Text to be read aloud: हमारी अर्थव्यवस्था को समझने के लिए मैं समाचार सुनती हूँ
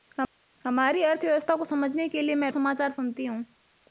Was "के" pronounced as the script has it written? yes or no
yes